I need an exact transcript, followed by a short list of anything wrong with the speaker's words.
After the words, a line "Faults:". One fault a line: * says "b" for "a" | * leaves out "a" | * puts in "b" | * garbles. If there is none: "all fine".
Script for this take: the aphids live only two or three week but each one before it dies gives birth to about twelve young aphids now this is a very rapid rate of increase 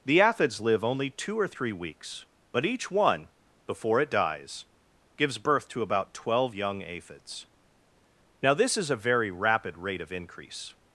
the aphids live only two or three weeks but each one before it dies gives birth to about twelve young aphids now this is a very rapid rate of increase
Faults:
* says "weeks" for "week"